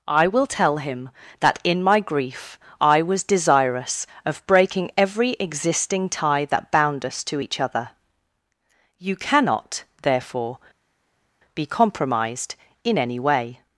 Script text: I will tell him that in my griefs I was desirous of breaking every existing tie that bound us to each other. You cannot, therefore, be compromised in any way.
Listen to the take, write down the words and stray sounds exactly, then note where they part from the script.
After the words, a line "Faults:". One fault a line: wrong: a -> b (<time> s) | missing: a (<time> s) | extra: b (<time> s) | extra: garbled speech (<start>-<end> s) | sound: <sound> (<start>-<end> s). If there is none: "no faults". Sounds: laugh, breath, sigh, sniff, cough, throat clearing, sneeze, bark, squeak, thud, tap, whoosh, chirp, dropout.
I will tell him that in my grief I was desirous of breaking every existing tie that bound us to each other. You cannot, therefore, be compromised in any way.
Faults:
wrong: griefs -> grief (2.0 s)